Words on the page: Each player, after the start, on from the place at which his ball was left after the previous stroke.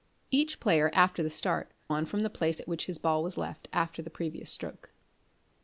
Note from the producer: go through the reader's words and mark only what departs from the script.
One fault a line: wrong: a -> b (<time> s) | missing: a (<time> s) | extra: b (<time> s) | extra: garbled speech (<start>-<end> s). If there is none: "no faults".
no faults